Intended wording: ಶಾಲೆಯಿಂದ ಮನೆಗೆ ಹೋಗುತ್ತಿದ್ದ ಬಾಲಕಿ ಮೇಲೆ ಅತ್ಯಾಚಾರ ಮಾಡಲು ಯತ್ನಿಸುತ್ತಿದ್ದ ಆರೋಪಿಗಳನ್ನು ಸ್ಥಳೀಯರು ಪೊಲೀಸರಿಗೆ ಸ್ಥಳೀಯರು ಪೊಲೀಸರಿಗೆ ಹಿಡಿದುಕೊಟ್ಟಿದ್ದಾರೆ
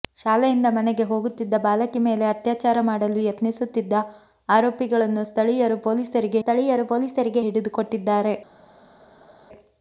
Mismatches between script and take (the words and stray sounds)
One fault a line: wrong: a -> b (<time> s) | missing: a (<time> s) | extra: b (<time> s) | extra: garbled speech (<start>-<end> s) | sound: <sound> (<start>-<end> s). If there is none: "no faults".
no faults